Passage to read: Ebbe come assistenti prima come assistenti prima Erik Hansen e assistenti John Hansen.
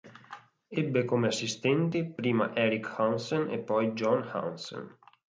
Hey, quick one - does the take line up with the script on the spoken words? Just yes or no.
no